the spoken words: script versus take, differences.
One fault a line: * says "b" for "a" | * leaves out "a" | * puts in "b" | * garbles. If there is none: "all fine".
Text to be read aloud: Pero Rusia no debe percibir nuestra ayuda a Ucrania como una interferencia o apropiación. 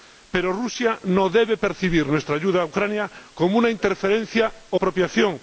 all fine